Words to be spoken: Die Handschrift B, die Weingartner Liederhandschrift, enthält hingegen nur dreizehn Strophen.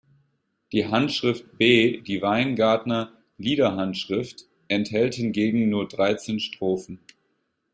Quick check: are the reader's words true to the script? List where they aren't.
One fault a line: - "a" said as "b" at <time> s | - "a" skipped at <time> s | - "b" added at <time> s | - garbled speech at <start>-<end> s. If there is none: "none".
none